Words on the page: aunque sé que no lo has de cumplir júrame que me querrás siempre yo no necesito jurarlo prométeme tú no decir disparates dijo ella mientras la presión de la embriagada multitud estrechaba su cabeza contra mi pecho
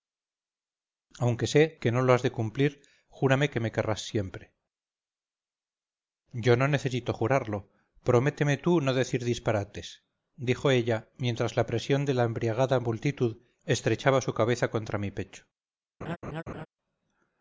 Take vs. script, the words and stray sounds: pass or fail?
fail